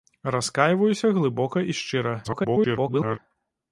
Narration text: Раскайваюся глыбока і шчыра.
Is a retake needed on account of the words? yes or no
yes